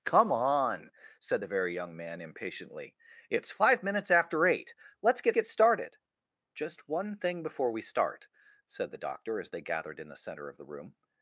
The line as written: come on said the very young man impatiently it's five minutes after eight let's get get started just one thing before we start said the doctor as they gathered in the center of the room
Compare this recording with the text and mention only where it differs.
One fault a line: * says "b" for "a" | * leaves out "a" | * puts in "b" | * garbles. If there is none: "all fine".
all fine